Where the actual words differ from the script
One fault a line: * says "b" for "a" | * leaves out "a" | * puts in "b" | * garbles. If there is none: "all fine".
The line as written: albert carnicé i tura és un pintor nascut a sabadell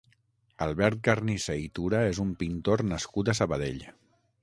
all fine